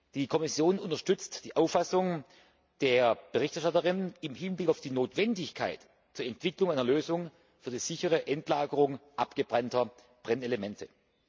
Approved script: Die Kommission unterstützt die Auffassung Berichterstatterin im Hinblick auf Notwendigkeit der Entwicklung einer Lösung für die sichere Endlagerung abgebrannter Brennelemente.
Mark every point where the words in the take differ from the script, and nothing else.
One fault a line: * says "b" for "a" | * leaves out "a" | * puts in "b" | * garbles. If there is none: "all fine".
* puts in "der"
* puts in "die"